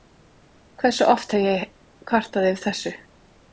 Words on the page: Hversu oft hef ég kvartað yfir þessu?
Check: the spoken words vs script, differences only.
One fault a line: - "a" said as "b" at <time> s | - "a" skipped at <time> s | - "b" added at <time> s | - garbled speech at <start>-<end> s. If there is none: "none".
none